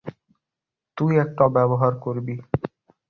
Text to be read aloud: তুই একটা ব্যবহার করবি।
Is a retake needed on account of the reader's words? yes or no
no